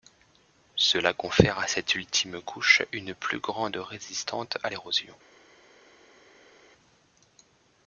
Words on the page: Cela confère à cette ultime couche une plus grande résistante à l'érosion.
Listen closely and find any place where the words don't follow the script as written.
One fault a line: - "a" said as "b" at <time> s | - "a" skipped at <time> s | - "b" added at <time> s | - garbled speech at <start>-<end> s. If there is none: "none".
none